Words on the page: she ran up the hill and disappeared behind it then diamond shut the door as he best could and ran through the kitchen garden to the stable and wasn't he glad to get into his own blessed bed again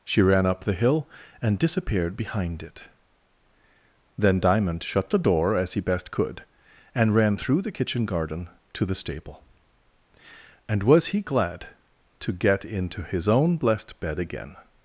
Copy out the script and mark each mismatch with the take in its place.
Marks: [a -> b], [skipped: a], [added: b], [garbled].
she ran up the hill and disappeared behind it then diamond shut the door as he best could and ran through the kitchen garden to the stable and [wasn't -> was] he glad to get into his own blessed bed again